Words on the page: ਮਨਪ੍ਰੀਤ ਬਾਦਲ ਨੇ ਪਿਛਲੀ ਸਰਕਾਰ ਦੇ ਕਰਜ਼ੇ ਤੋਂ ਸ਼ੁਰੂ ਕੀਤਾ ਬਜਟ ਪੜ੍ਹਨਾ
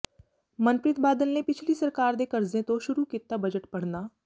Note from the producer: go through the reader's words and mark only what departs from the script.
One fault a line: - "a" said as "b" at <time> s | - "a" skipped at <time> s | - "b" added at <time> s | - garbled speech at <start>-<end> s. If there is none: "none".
none